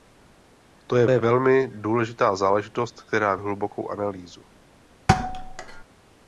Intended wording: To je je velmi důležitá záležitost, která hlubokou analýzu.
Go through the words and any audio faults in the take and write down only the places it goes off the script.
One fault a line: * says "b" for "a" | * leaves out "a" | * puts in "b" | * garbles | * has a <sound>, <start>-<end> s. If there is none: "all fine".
* has a thud, 5.1-5.8 s